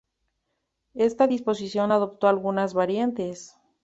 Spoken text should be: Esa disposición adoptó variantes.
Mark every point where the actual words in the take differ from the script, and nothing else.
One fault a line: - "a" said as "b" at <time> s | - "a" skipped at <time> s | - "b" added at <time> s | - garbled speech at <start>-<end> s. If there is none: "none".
- "Esa" said as "Esta" at 0.9 s
- "algunas" added at 2.3 s